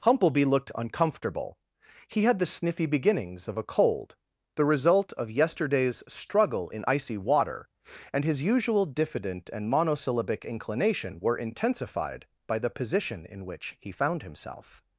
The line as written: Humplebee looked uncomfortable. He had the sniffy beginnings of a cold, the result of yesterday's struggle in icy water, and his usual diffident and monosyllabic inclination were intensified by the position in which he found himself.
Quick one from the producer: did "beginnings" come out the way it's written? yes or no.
yes